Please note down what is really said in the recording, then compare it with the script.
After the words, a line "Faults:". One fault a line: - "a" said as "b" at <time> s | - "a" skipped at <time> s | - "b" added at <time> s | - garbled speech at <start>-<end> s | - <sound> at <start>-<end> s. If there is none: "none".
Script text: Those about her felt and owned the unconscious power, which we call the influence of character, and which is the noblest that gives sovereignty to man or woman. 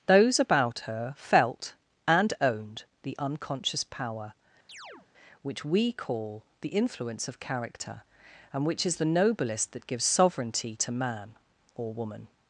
Those about her felt and owned the unconscious power, which we call the influence of character, and which is the noblest that gives sovereignty to man or woman.
Faults:
- chirp at 4.7-5.1 s